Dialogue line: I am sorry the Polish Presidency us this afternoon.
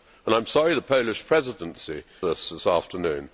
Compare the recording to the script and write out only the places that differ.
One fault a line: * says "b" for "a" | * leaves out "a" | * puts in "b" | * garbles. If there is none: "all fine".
all fine